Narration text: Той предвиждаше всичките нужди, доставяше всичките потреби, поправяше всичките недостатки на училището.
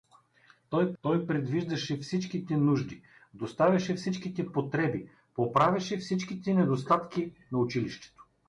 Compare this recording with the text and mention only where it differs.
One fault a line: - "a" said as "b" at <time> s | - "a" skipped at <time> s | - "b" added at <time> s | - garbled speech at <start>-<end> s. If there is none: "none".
- "той" added at 1.0 s